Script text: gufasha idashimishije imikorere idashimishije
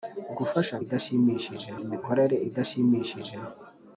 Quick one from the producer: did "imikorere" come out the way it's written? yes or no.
yes